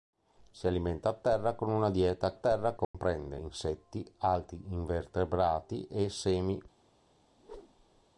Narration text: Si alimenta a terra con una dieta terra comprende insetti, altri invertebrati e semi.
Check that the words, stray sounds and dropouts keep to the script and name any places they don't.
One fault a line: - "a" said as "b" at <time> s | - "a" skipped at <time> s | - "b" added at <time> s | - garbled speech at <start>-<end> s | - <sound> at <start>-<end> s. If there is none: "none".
- dropout at 2.8-2.9 s
- whoosh at 7.4-8.0 s